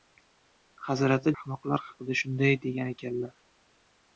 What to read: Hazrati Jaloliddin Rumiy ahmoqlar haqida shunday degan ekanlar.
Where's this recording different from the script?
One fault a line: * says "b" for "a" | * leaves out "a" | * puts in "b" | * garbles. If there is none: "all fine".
* leaves out "Jaloliddin Rumiy"